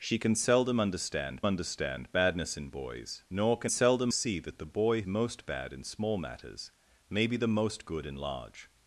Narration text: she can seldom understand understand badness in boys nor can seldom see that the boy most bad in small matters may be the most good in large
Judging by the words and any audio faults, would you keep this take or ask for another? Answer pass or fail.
pass